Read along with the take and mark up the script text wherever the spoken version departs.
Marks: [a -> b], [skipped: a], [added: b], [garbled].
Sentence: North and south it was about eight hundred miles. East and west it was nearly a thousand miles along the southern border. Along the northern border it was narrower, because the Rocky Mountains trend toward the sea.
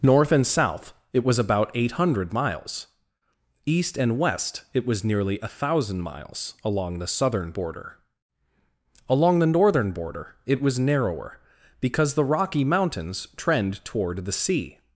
North and south it was about eight hundred miles. East and west it was nearly a thousand miles along the southern border. Along the northern border it was narrower, because the Rocky Mountains trend toward the sea.